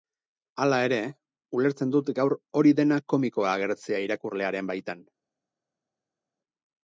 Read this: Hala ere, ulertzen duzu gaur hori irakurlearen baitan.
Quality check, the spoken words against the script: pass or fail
fail